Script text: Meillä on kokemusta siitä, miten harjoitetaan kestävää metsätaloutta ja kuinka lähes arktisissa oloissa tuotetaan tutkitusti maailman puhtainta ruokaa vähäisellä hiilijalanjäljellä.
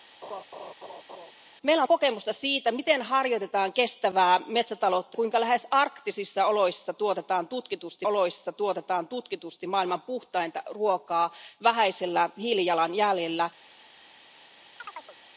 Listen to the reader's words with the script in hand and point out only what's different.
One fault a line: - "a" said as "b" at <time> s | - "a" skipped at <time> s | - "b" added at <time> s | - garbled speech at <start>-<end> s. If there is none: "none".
- "ja" skipped at 5.2 s
- "oloissa tuotetaan tutkitusti" added at 8.0 s